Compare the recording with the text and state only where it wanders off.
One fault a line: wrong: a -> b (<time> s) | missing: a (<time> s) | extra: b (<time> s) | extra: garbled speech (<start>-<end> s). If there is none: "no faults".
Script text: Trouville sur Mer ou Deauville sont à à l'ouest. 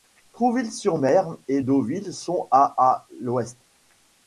wrong: ou -> et (1.5 s)